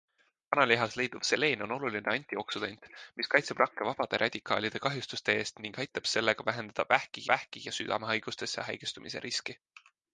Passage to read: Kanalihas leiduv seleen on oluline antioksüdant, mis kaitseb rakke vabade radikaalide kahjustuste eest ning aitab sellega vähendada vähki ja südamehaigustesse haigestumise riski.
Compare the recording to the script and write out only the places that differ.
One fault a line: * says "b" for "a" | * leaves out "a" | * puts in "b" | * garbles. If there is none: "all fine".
* puts in "vähki"